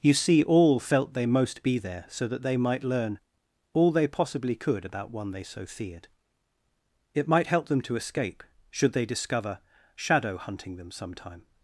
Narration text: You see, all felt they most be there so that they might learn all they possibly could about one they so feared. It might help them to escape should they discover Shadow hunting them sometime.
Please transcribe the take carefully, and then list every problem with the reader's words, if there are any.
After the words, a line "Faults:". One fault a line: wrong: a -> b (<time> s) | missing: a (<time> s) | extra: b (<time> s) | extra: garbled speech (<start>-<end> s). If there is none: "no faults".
You see, all felt they most be there so that they might learn all they possibly could about one they so feared. It might help them to escape should they discover Shadow hunting them sometime.
Faults:
no faults